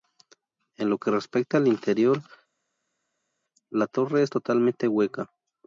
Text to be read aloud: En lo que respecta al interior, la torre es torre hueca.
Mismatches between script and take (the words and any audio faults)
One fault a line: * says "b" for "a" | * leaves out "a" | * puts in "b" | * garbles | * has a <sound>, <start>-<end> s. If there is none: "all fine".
* says "totalmente" for "torre"